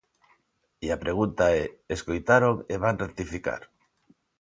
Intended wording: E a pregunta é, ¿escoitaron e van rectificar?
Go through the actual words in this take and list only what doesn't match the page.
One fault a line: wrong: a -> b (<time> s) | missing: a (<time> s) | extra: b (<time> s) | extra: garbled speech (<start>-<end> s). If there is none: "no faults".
no faults